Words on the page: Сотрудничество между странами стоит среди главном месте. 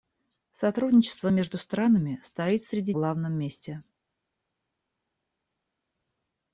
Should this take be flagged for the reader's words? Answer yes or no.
no